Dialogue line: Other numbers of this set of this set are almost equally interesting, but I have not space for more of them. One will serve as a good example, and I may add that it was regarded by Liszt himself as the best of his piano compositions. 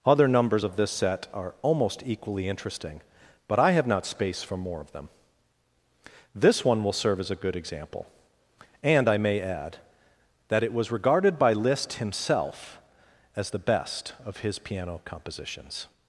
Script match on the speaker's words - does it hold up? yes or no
no